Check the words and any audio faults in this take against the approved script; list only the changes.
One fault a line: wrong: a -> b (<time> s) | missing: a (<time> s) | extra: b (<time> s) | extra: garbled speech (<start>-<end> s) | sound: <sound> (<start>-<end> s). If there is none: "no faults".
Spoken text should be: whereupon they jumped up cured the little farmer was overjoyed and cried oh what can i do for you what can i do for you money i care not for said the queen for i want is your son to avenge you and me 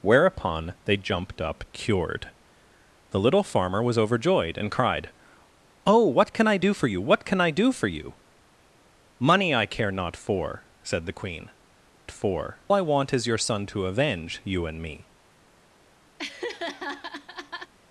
sound: laugh (16.2-17.7 s)